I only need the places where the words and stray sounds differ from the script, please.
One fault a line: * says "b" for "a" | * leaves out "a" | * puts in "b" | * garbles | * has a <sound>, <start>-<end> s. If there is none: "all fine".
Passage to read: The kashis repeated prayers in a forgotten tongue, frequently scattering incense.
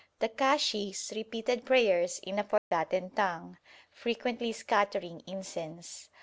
* has a dropout, 2.6-2.7 s